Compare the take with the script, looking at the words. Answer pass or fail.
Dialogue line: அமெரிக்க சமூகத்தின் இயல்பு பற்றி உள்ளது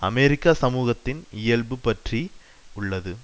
pass